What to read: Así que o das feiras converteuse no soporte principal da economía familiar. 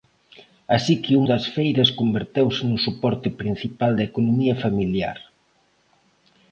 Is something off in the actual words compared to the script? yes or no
no